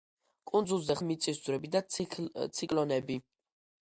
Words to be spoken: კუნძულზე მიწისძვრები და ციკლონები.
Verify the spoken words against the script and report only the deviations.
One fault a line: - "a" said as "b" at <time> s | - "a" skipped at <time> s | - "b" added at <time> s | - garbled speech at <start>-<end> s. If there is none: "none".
none